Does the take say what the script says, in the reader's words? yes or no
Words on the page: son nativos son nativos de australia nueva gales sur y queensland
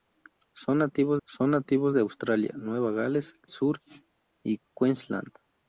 yes